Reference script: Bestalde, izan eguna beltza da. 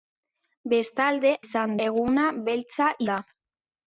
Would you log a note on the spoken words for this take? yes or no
no